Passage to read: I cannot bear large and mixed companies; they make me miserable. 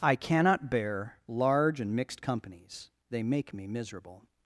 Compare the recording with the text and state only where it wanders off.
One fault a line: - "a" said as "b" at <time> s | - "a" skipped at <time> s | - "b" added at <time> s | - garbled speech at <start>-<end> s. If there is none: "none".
none